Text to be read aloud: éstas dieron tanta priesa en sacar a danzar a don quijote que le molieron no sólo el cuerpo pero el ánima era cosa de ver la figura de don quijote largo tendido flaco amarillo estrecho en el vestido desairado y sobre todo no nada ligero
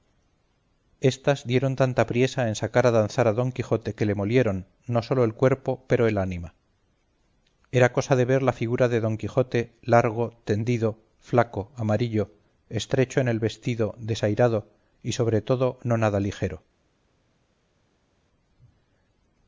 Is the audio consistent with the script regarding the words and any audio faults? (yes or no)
yes